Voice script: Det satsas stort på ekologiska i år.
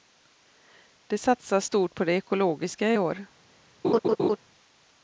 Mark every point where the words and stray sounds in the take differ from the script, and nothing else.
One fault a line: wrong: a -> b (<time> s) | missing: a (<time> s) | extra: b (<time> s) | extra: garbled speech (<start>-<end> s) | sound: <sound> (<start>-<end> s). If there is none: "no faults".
extra: det (2.0 s)
sound: laugh (3.8-4.4 s)